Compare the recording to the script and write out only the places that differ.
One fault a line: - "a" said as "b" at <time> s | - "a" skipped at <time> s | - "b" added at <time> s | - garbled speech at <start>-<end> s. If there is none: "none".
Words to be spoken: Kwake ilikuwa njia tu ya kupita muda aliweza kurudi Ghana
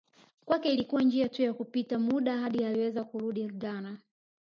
- "hadi" added at 2.4 s